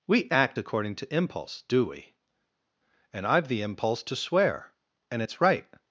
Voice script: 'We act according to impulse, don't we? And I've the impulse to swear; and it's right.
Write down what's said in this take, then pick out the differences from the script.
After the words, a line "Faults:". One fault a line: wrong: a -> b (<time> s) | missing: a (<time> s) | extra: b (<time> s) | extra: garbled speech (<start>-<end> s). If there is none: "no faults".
'We act according to impulse, do we? And I've the impulse to swear; and it's right.
Faults:
wrong: don't -> do (1.6 s)